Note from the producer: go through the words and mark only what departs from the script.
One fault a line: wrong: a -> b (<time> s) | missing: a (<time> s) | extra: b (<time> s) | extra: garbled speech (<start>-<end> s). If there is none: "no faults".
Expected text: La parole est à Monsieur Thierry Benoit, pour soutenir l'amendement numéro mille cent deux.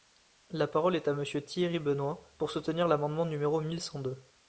no faults